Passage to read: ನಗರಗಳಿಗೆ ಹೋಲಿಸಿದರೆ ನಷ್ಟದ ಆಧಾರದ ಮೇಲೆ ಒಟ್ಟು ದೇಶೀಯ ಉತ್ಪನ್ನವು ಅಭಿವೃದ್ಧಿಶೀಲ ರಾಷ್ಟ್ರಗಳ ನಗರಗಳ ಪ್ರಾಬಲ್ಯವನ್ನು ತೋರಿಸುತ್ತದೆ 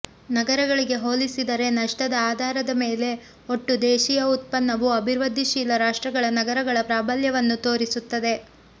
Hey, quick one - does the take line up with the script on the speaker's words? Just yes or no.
yes